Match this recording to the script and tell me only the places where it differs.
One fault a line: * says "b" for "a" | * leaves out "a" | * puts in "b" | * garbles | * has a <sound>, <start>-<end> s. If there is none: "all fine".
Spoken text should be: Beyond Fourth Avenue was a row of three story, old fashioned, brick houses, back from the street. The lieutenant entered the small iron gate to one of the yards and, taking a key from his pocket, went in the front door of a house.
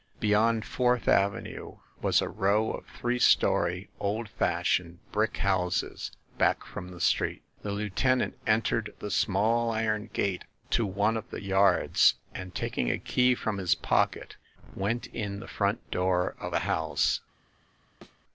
* has a thud, 18.0-18.2 s